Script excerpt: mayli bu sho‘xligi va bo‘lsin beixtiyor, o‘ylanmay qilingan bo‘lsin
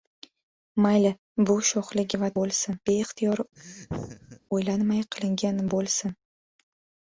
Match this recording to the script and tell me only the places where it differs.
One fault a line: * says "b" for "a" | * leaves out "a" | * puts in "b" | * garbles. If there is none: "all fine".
all fine